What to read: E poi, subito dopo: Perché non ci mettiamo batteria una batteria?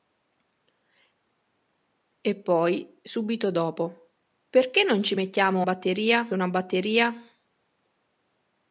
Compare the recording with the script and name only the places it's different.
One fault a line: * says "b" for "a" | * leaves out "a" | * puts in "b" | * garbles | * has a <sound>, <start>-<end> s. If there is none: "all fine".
all fine